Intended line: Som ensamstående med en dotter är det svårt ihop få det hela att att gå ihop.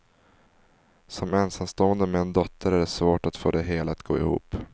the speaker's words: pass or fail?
fail